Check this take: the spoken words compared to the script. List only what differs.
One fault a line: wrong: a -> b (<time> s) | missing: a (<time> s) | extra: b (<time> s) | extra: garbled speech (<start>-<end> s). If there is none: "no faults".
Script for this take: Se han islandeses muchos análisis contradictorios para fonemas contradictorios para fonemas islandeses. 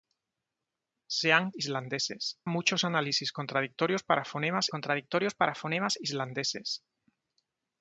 no faults